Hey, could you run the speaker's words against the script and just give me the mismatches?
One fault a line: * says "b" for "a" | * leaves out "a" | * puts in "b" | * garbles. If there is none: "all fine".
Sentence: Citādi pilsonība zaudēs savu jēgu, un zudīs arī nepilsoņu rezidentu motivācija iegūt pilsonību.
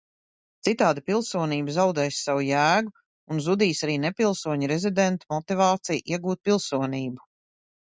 all fine